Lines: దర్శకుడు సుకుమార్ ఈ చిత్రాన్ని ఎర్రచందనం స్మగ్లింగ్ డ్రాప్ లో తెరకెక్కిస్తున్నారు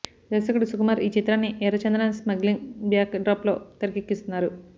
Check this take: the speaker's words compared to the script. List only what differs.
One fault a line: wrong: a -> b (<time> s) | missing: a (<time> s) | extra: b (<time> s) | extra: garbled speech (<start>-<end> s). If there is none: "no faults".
extra: బ్యాక్ (2.9 s)